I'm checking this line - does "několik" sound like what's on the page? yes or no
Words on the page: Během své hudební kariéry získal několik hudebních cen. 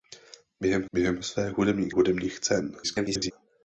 no